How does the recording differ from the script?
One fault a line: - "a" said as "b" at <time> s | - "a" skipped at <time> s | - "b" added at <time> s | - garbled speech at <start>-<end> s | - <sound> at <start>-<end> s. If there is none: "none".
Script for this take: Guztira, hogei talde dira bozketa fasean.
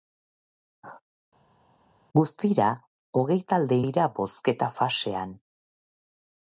none